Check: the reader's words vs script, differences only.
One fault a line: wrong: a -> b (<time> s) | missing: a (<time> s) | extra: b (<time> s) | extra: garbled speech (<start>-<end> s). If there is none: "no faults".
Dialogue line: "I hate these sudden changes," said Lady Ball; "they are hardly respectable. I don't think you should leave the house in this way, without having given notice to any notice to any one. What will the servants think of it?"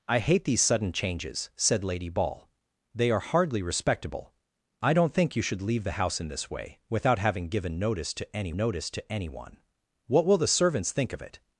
no faults